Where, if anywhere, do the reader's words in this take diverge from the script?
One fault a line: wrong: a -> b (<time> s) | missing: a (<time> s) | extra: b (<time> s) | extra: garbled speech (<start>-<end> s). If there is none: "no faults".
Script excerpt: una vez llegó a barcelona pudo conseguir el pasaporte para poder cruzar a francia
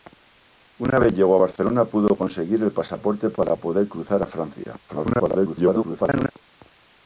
extra: garbled speech (4.9-6.3 s)